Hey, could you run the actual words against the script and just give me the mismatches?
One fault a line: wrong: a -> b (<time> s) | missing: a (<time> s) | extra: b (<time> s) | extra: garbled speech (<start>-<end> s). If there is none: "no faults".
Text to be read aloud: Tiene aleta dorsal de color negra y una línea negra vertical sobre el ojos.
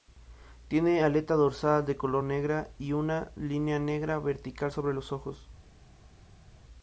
wrong: el -> los (4.9 s)